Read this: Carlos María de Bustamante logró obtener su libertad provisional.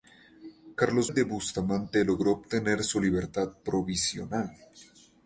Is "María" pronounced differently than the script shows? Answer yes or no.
yes